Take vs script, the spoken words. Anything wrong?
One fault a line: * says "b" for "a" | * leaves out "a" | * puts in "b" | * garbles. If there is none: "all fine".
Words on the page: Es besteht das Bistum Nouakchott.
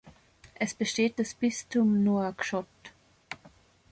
all fine